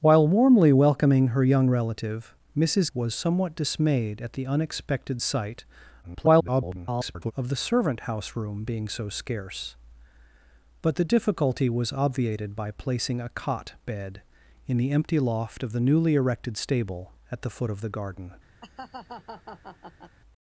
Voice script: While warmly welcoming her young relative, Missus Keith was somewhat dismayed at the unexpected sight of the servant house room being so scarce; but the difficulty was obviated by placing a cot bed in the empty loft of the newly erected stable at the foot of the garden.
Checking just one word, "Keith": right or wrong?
wrong